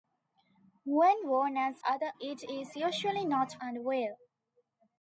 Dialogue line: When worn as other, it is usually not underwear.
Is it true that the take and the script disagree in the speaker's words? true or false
false